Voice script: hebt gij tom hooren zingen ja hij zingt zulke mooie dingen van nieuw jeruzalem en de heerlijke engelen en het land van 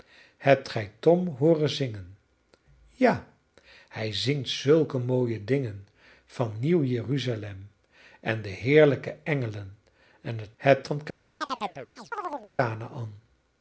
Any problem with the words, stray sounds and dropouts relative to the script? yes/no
yes